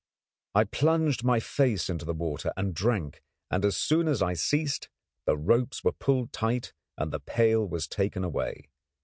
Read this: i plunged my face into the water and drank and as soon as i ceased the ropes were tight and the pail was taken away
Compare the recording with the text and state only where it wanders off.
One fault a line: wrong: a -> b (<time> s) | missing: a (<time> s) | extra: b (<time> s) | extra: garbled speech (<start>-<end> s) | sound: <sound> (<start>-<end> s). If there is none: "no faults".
extra: pulled (5.9 s)